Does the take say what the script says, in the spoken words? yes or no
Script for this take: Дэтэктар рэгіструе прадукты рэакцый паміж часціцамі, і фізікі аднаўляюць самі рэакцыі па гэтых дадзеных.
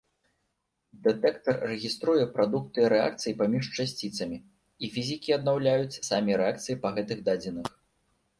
yes